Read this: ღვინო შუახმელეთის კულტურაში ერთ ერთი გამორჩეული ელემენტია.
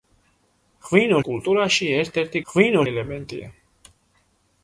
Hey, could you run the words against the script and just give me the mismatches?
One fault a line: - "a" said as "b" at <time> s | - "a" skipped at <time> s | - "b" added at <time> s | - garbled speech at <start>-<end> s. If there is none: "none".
- "შუახმელეთის" skipped at 1.2 s
- "გამორჩეული" said as "ღვინო" at 2.5 s